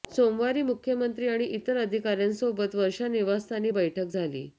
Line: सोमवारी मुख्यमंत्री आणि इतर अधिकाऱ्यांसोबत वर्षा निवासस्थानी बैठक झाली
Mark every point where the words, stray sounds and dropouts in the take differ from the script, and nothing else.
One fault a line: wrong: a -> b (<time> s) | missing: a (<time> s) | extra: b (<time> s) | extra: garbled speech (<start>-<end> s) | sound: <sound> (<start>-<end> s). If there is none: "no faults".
no faults